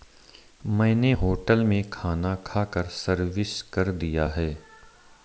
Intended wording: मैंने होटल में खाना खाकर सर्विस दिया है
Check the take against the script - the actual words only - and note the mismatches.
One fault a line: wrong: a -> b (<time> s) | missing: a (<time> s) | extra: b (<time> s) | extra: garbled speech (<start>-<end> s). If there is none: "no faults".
extra: कर (3.6 s)